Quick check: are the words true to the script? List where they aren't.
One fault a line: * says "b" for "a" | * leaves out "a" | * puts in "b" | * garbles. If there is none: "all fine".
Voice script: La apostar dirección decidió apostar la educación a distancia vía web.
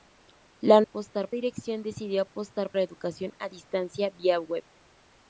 all fine